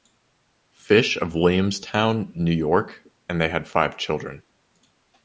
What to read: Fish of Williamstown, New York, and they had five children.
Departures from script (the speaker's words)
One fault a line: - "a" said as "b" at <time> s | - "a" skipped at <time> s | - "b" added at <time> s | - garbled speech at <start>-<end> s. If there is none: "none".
none